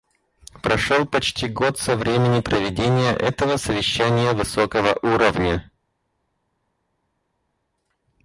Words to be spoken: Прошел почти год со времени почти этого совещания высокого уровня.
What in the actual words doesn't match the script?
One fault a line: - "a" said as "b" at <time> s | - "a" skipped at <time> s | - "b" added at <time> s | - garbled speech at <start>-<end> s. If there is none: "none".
- "почти" said as "проведения" at 2.4 s